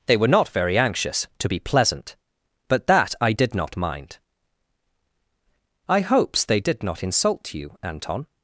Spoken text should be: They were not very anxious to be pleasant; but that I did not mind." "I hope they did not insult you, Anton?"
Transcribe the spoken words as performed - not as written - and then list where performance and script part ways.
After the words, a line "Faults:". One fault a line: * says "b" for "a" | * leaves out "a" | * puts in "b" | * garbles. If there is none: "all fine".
They were not very anxious to be pleasant; but that I did not mind." "I hopes they did not insult you, Anton?"
Faults:
* says "hopes" for "hope"